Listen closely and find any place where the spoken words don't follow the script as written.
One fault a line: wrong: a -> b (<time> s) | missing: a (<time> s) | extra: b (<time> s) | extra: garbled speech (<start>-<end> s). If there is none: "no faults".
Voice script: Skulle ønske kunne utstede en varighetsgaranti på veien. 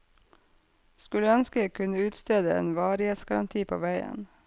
extra: jeg (1.6 s)